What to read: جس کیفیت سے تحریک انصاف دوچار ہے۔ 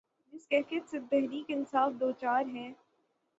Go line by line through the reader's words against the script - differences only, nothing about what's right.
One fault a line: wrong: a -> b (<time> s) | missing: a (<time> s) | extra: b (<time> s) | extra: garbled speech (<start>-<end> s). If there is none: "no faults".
no faults